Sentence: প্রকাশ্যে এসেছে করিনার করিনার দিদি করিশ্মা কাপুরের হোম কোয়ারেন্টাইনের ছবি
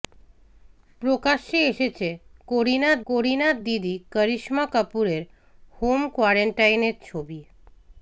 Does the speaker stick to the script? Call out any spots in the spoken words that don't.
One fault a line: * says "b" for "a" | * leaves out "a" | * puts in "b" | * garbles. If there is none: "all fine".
all fine